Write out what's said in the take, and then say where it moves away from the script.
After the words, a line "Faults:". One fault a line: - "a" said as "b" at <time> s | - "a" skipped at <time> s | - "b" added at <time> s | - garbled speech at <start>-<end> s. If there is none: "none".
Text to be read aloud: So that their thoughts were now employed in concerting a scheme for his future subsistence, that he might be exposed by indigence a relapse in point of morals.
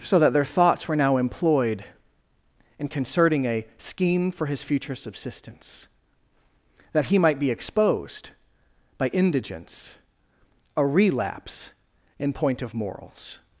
So that their thoughts were now employed in concerting a scheme for his future subsistence, that he might be exposed by indigence a relapse in point of morals.
Faults:
none